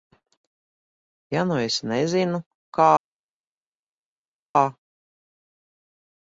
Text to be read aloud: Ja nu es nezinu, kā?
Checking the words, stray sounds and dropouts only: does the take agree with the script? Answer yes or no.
yes